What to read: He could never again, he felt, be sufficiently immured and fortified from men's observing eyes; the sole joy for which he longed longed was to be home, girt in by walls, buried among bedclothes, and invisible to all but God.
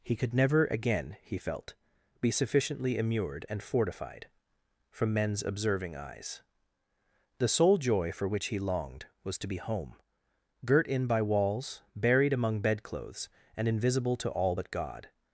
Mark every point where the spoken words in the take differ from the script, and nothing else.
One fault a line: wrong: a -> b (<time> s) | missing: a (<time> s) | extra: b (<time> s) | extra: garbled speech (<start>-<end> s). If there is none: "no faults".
missing: longed (9.0 s)